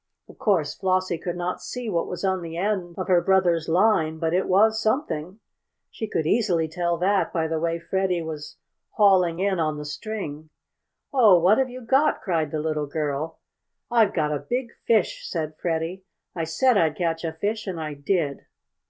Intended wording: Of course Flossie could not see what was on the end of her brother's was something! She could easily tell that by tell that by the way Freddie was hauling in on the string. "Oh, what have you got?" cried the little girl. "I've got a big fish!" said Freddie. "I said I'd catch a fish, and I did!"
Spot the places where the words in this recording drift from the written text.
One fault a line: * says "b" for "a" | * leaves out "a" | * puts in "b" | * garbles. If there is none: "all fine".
* puts in "line but it"
* leaves out "tell that by"